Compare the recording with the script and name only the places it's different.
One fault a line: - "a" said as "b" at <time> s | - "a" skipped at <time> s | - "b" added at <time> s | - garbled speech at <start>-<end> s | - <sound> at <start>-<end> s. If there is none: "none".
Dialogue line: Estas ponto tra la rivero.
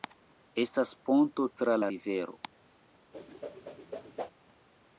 - whoosh at 3.1-4.3 s